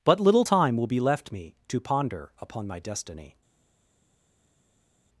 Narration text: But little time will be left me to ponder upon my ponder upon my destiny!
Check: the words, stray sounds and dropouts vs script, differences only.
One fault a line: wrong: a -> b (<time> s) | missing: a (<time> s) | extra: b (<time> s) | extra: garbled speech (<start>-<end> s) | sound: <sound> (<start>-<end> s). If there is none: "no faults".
missing: ponder upon my (2.8 s)